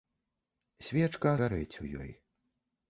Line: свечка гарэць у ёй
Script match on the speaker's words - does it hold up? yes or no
yes